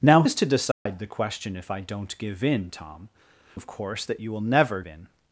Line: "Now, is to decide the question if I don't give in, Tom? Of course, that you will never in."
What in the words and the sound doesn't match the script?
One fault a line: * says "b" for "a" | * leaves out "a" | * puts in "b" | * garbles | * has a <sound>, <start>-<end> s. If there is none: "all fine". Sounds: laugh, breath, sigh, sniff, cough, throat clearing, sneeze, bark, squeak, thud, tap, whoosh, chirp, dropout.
* has a dropout, 0.7-0.9 s